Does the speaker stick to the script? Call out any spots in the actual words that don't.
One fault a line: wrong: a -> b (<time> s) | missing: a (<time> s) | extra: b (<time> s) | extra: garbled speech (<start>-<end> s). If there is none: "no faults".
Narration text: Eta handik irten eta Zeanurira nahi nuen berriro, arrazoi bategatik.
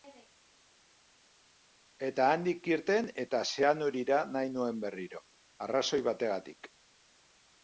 no faults